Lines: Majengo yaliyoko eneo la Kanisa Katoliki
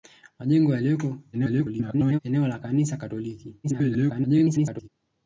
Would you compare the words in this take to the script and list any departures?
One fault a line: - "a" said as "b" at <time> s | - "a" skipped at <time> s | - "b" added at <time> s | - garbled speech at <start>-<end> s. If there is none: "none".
- garbled speech at 1.3-2.2 s
- garbled speech at 3.6-4.9 s